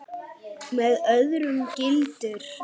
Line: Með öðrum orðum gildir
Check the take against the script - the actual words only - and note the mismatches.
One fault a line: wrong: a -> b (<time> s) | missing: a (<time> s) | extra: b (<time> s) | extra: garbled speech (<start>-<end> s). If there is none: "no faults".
missing: orðum (1.6 s)